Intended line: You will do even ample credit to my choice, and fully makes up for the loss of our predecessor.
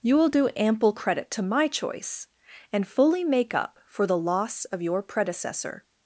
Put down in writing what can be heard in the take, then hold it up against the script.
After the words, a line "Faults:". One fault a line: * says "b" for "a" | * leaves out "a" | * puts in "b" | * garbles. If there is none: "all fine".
You will do ample credit to my choice, and fully make up for the loss of your predecessor.
Faults:
* leaves out "even"
* says "make" for "makes"
* says "your" for "our"